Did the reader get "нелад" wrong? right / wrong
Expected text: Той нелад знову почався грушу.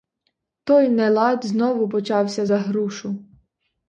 right